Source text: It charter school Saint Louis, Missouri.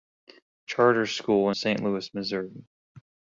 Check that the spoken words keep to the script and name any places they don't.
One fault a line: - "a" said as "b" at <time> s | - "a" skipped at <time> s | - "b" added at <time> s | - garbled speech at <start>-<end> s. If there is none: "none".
none